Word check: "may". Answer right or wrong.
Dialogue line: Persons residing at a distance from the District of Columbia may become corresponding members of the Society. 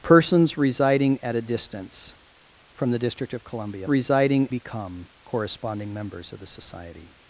wrong